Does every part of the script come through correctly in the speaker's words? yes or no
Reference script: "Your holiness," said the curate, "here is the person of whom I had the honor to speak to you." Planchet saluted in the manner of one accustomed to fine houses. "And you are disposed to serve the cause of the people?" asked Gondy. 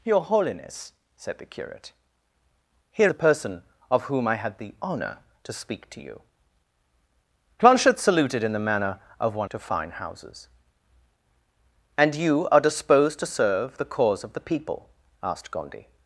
no